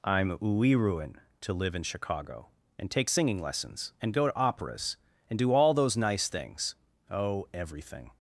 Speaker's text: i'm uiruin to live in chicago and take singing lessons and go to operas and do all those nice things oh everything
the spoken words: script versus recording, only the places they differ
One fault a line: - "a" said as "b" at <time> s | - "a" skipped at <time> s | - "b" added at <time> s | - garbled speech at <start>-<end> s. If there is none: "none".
none